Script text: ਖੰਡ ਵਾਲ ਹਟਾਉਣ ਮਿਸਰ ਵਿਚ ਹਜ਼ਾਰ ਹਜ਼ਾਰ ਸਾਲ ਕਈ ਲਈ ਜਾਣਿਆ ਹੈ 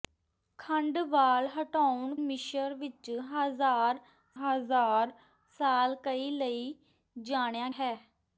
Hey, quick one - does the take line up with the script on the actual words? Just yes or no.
yes